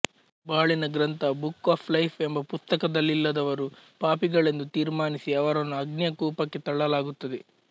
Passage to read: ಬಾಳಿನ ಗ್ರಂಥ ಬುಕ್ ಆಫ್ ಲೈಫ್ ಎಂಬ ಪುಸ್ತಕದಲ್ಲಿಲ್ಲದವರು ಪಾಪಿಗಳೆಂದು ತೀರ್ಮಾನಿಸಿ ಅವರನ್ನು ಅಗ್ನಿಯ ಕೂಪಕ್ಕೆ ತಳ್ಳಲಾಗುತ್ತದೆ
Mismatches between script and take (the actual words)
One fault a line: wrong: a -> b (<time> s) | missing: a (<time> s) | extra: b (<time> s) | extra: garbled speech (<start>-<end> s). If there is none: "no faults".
no faults